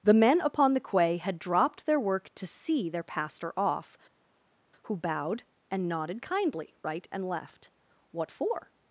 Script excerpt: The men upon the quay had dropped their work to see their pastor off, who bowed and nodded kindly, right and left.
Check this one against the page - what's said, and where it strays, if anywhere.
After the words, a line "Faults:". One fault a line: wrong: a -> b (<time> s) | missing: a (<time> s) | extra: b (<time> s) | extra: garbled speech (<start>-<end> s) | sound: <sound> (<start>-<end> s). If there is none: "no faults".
The men upon the quay had dropped their work to see their pastor off, who bowed and nodded kindly, right and left. "What for
Faults:
extra: What for (8.1 s)